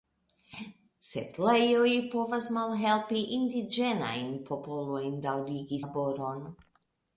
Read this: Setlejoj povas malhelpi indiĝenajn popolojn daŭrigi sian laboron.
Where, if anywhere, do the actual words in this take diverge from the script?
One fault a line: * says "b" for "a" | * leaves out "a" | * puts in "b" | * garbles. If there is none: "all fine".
* leaves out "sian"